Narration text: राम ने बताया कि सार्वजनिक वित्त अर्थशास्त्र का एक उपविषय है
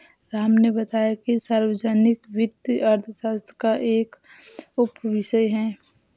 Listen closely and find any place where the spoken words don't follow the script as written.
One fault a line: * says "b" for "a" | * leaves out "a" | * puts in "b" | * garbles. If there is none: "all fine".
all fine